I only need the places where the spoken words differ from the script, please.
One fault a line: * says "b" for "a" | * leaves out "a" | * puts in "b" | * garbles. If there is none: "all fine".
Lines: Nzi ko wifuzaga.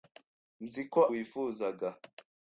all fine